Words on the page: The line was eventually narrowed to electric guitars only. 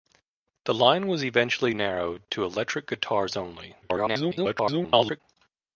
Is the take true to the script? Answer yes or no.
no